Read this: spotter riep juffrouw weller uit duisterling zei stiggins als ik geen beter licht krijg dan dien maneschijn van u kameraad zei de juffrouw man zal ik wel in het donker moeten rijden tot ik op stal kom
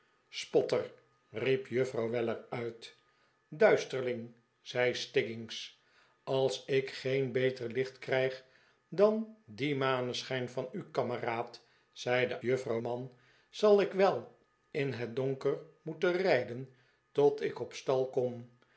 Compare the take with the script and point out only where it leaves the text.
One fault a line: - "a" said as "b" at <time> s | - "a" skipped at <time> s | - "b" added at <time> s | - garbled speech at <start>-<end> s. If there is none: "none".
none